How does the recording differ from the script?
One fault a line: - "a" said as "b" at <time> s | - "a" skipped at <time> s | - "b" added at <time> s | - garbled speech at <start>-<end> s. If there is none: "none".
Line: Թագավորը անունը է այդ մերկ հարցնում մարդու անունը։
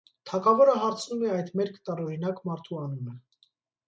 - "անունը" said as "հարցնում" at 0.8 s
- "հարցնում" said as "տարօրինակ" at 1.9 s